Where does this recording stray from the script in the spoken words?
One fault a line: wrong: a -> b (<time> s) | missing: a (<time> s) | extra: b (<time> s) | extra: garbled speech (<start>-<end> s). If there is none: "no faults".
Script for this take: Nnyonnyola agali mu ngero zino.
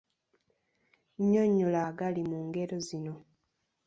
no faults